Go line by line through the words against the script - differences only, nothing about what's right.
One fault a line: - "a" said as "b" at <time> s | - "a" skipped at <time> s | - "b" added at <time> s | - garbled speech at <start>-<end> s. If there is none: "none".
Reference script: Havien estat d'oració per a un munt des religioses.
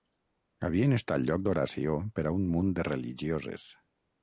- "lloc" added at 1.3 s
- "des" said as "de" at 2.8 s